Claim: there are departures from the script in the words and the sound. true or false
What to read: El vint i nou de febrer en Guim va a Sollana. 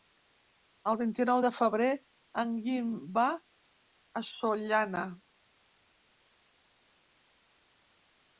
false